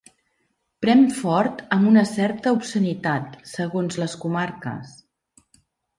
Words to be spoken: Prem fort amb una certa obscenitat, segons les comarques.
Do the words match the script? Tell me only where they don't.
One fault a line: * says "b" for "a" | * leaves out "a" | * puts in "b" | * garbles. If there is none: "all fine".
all fine